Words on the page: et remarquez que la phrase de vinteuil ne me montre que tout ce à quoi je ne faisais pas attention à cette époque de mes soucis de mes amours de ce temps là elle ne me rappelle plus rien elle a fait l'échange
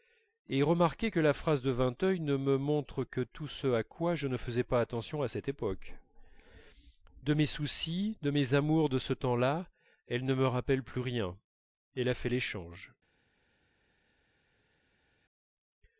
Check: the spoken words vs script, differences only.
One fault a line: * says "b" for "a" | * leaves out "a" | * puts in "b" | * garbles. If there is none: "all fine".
all fine